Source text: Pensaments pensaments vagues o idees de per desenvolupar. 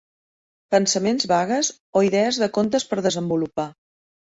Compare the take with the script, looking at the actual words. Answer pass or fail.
fail